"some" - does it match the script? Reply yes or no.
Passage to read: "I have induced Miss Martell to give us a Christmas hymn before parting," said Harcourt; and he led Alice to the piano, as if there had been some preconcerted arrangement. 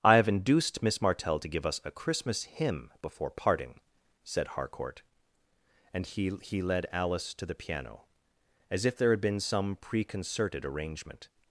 yes